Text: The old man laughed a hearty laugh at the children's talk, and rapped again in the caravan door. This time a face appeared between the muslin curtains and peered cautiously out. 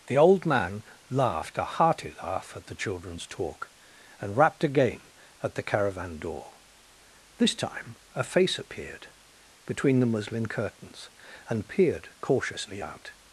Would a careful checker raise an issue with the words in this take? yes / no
yes